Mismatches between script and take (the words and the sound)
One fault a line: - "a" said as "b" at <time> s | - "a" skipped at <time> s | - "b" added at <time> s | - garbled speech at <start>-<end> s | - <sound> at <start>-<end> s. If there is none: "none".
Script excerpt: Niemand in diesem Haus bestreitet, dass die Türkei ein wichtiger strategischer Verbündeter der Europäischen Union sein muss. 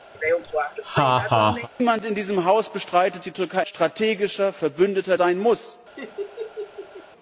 - laugh at 0.1-1.7 s
- "dass" skipped at 3.2 s
- "ein wichtiger" skipped at 3.6 s
- "der Europäischen Union" skipped at 5.2 s
- laugh at 6.0-7.1 s